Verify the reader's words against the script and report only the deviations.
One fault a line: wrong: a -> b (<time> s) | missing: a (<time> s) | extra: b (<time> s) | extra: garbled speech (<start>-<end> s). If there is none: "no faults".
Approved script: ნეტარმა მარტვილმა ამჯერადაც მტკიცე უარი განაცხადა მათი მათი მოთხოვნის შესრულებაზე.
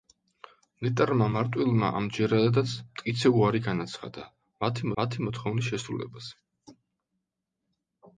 no faults